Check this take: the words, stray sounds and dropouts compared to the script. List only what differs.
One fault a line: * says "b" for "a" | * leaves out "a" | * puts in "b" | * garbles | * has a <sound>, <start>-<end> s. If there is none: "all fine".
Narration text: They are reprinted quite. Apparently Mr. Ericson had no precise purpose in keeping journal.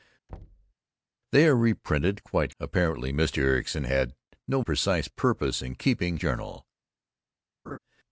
* has a thud, 0.3-0.7 s
* has a laugh, 7.7-7.8 s